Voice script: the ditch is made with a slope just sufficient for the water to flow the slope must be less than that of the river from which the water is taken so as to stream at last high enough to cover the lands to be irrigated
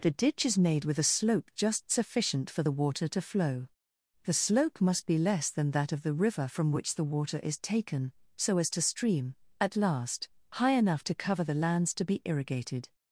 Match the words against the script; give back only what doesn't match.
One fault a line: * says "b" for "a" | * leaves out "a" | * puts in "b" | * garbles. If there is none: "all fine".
all fine